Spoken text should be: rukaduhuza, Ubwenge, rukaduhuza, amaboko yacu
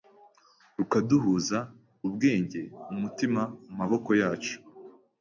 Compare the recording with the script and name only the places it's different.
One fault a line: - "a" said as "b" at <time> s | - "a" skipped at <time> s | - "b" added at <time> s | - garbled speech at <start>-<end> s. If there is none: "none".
- "rukaduhuza" said as "umutima" at 2.9 s